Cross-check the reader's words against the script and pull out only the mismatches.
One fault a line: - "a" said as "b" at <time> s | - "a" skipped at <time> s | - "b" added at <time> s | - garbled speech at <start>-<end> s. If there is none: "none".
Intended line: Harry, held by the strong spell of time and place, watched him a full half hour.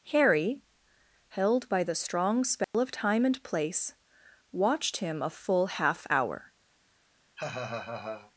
none